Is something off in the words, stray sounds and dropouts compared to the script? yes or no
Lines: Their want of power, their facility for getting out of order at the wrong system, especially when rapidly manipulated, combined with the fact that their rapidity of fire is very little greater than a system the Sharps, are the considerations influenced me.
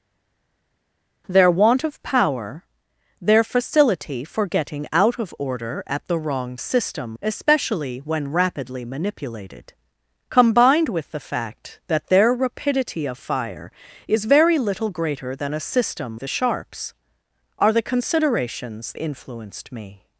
no